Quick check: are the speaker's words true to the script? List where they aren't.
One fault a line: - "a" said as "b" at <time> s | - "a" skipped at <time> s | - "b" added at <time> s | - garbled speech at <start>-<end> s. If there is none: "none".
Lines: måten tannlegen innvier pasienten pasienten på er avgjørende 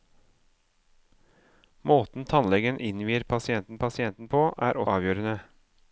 none